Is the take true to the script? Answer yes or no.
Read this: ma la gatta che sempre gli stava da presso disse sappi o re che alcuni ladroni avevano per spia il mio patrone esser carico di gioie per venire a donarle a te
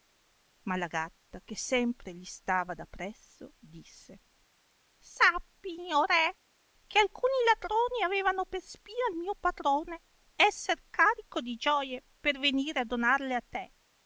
yes